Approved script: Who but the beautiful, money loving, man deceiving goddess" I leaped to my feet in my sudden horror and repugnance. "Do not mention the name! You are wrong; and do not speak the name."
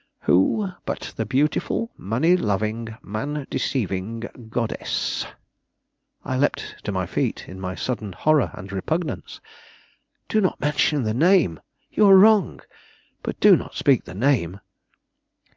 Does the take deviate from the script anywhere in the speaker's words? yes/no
yes